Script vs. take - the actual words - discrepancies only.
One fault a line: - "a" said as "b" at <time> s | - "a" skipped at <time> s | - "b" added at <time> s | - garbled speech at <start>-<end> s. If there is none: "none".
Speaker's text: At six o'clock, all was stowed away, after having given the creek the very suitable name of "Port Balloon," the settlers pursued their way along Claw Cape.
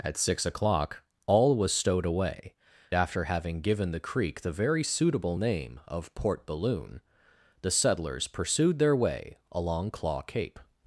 none